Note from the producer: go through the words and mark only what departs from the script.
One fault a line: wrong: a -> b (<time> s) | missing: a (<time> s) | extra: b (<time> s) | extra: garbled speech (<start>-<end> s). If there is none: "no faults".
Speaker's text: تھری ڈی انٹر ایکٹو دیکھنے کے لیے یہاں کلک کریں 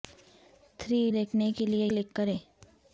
missing: ڈی انٹر ایکٹو (1.0 s)
missing: یہاں (1.9 s)